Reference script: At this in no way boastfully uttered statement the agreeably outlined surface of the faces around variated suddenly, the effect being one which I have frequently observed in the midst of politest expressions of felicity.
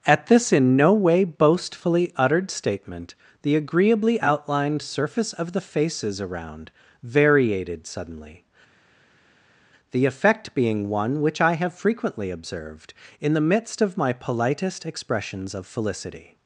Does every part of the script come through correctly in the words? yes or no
no